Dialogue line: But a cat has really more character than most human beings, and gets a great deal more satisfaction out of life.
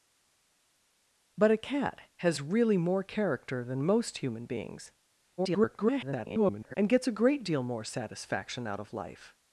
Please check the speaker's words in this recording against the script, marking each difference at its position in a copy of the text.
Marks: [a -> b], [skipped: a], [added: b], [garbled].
But a cat has really more character than most human beings, [garbled] and gets a great deal more satisfaction out of life.